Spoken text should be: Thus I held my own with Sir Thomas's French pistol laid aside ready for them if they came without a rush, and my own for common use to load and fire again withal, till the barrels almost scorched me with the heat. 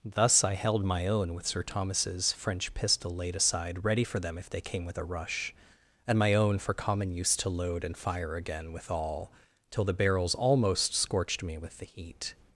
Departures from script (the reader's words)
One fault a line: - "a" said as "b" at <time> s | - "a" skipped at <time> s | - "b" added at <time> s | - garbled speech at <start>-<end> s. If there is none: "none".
- "without" said as "with" at 4.8 s